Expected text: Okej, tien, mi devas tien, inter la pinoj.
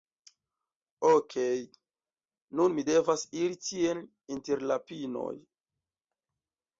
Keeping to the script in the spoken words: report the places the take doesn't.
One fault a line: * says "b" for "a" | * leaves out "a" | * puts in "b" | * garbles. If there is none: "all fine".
* says "nun" for "tien"
* puts in "iri"